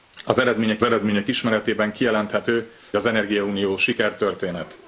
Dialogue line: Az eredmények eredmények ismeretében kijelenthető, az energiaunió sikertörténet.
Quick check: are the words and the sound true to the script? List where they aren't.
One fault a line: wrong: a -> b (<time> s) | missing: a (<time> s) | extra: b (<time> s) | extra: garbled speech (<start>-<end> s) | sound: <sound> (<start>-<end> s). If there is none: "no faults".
no faults